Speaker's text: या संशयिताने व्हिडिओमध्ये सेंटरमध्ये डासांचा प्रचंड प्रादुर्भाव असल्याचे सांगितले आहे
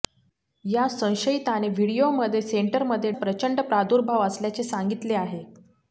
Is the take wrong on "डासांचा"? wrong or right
wrong